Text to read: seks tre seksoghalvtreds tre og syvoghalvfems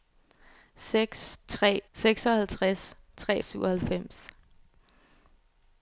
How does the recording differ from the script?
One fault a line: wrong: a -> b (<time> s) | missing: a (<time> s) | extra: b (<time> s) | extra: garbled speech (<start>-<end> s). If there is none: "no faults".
no faults